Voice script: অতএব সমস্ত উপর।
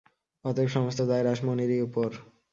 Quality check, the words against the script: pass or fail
fail